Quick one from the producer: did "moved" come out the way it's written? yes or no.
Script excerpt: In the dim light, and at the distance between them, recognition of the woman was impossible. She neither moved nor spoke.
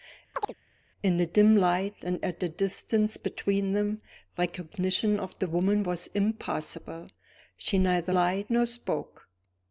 no